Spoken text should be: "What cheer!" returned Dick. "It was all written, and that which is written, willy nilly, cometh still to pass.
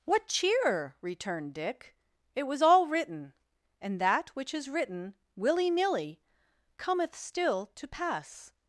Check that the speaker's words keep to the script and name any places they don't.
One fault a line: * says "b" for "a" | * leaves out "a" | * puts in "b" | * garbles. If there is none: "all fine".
all fine